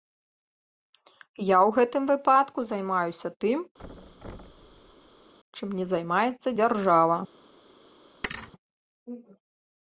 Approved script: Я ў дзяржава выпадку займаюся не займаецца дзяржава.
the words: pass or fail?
fail